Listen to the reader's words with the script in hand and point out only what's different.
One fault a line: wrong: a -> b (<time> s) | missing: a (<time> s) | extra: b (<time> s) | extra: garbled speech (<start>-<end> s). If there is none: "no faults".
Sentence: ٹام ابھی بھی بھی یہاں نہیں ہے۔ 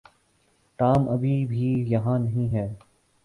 missing: بھی (1.7 s)